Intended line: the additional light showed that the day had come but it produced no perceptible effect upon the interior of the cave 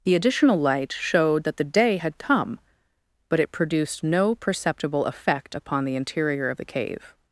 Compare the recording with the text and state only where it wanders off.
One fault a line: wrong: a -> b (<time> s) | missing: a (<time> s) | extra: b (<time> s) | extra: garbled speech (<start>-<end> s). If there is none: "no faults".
no faults